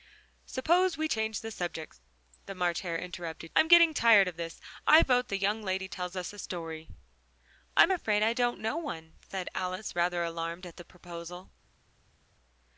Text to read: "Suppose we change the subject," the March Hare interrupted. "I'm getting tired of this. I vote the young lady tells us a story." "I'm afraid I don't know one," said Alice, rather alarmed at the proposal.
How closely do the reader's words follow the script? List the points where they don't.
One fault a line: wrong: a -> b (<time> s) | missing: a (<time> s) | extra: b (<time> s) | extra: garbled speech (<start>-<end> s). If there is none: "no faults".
no faults